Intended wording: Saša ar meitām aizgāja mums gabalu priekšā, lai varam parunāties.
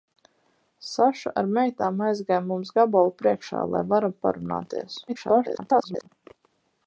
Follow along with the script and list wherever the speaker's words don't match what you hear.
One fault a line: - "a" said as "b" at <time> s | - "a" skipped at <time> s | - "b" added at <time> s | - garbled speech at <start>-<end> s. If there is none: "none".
- garbled speech at 5.1-6.1 s